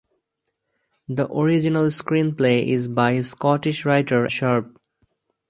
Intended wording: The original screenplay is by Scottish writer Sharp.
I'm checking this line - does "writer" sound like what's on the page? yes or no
yes